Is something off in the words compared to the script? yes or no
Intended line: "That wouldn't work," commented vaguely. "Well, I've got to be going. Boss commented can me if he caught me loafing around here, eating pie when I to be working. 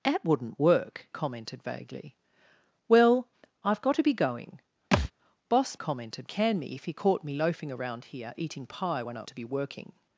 no